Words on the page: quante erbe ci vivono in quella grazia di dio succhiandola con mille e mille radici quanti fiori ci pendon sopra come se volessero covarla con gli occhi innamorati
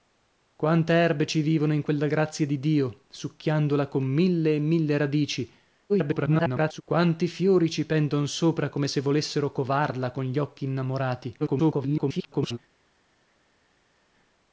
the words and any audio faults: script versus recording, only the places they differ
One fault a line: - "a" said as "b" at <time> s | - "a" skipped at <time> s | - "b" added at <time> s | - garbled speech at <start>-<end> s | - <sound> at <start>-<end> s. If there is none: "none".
- garbled speech at 5.9-6.8 s
- garbled speech at 11.4-12.6 s